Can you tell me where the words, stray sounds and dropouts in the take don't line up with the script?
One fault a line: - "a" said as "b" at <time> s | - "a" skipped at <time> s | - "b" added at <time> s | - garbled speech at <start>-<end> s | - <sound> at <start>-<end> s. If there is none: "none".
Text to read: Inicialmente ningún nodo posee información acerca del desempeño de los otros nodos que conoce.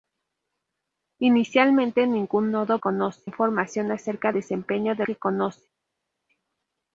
- "posee" said as "conoce" at 2.8 s
- "del" skipped at 4.3 s
- "los otros nodos" skipped at 5.1 s